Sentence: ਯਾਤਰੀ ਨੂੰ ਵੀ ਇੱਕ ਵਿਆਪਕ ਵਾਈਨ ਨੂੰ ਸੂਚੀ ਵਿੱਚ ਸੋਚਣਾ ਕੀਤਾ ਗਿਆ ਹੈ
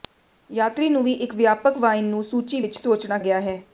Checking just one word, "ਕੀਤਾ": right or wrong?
wrong